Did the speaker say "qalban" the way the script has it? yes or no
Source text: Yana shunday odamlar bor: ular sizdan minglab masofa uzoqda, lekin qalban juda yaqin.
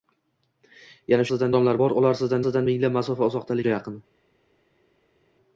no